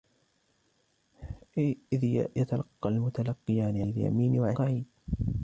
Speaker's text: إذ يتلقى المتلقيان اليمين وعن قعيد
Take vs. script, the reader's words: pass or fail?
pass